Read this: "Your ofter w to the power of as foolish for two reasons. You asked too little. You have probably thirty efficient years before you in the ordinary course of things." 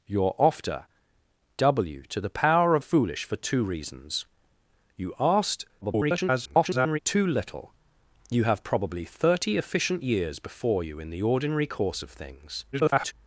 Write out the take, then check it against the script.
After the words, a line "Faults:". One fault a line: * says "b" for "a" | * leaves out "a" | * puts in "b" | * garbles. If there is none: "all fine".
"Your ofter w to the power of foolish for two reasons. You asked [garbled] too little. You have probably thirty efficient years before you in the ordinary course of things." [garbled]
Faults:
* leaves out "as"
* garbles
* garbles